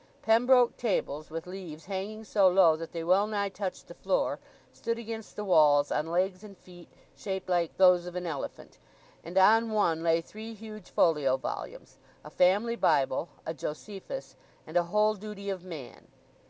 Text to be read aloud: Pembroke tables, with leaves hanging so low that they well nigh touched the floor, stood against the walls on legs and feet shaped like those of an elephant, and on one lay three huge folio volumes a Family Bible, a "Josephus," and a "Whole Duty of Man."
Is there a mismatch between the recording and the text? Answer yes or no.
no